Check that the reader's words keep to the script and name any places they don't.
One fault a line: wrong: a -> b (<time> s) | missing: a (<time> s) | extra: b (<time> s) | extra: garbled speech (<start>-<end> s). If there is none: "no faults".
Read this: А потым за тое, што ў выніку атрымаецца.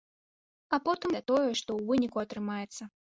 no faults